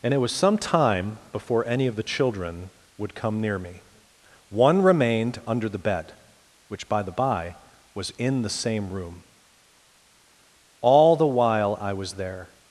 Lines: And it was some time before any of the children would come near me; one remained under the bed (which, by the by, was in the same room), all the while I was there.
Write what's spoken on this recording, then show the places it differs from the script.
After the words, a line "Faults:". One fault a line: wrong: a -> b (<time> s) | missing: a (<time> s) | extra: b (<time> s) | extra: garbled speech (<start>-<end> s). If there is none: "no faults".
And it was some time before any of the children would come near me; one remained under the bed (which, by the by, was in the same room), all the while I was there.
Faults:
no faults